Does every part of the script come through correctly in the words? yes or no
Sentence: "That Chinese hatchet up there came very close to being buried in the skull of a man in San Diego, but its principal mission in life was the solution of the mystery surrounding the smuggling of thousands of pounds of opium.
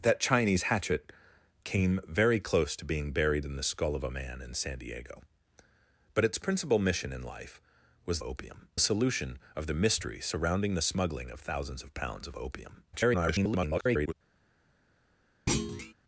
no